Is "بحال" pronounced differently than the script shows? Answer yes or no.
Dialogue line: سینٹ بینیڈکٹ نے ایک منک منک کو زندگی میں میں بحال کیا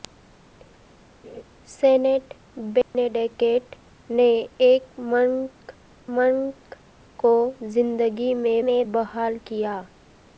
no